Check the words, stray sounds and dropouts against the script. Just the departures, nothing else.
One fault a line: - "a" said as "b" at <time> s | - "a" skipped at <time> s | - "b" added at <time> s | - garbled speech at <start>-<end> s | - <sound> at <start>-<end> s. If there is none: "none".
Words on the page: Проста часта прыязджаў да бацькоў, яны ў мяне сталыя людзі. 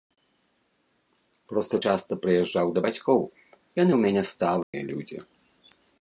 - dropout at 4.6-4.7 s